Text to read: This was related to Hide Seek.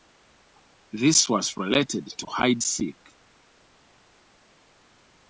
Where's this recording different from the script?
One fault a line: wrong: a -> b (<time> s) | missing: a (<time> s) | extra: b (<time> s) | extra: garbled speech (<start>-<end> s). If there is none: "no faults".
no faults